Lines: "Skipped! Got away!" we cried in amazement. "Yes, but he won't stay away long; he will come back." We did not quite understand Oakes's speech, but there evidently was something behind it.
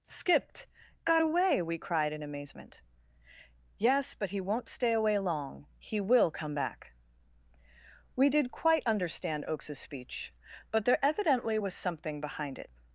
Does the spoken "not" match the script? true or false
false